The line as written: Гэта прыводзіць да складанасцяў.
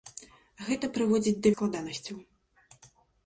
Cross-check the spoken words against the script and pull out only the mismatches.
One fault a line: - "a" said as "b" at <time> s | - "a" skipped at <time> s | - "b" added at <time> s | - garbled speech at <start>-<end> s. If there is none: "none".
none